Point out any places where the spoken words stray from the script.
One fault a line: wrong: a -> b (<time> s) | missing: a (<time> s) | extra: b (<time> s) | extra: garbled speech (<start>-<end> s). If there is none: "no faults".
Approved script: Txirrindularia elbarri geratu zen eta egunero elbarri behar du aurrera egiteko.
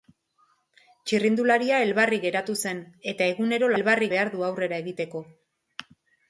no faults